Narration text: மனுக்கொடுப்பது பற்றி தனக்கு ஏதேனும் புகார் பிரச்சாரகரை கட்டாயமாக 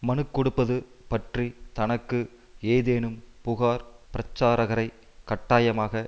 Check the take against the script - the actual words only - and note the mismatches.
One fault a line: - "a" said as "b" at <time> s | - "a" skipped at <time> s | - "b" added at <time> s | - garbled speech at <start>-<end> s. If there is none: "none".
none